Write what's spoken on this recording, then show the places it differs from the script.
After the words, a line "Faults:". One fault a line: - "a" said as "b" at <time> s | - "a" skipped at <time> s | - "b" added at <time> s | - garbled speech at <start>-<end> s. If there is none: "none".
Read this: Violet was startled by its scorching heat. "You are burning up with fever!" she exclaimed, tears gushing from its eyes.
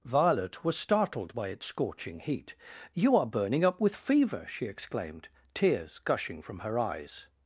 Violet was startled by its scorching heat. "You are burning up with fever!" she exclaimed, tears gushing from her eyes.
Faults:
- "its" said as "her" at 6.6 s